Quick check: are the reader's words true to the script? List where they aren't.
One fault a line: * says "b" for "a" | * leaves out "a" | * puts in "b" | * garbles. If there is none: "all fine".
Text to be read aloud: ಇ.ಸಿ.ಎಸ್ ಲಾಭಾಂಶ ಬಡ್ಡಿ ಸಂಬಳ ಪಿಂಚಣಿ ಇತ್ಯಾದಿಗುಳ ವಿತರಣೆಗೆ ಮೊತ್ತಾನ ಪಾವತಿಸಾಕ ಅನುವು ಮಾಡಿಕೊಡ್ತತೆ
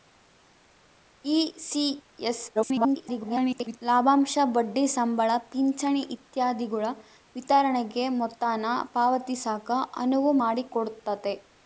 * garbles